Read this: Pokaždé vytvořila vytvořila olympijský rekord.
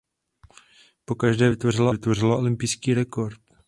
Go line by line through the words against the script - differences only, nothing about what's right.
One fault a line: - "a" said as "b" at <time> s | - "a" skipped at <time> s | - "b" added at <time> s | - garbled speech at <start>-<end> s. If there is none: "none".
none